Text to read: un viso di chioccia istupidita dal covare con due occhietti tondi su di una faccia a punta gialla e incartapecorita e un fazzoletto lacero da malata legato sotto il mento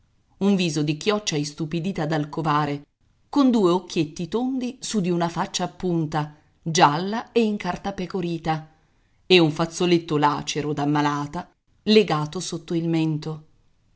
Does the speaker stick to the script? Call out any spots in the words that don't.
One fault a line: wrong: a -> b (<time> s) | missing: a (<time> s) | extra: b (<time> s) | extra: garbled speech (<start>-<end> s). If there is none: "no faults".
no faults